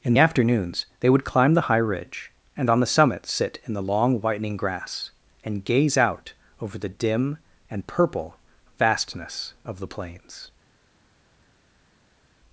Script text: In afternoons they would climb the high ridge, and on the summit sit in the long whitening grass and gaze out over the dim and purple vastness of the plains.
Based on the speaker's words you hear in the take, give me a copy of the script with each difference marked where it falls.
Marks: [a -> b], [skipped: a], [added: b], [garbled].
In afternoons they would climb the high ridge, and on the summit sit in the long whitening grass and gaze out over the dim and purple vastness of the plains.